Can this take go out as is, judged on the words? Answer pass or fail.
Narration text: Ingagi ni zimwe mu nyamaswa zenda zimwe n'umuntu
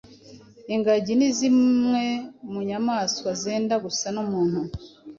fail